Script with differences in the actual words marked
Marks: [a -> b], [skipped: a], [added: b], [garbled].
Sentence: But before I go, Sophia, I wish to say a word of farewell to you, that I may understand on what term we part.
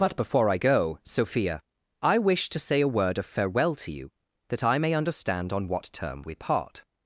But before I go, Sophia, I wish to say a word of farewell to you, that I may understand on what term we part.